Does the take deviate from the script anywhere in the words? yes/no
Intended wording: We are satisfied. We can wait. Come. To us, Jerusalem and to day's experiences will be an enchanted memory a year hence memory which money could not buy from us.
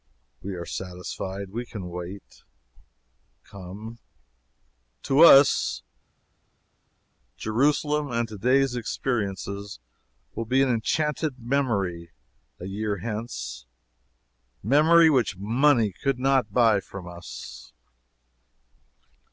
no